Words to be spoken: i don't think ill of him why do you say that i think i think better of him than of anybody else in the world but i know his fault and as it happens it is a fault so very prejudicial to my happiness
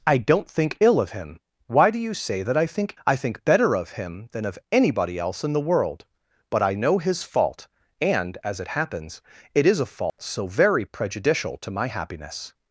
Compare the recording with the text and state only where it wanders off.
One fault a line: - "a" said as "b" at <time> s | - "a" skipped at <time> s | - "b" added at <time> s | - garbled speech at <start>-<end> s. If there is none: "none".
none